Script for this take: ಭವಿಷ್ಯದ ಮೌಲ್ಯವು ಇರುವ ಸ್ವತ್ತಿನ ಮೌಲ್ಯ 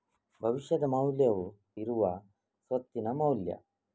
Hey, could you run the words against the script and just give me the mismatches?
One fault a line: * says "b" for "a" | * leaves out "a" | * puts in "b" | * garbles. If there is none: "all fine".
all fine